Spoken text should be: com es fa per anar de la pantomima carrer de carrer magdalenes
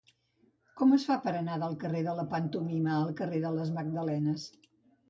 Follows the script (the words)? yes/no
no